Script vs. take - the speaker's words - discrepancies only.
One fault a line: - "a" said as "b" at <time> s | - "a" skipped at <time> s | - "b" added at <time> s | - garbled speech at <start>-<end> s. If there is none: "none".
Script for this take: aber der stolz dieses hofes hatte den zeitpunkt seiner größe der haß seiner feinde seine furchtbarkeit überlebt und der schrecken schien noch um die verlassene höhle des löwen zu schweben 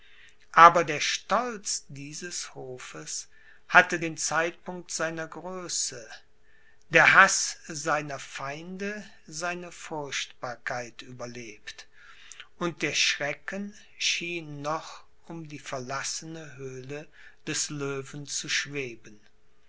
none